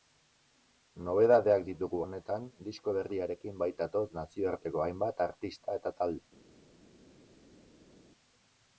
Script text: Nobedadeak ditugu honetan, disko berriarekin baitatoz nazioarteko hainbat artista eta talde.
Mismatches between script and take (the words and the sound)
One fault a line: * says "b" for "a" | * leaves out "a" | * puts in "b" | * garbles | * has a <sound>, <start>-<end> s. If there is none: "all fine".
all fine